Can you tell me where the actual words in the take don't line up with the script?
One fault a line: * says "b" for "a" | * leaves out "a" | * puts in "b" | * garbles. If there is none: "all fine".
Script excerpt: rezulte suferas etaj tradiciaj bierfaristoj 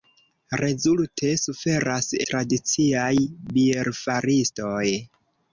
* leaves out "etaj"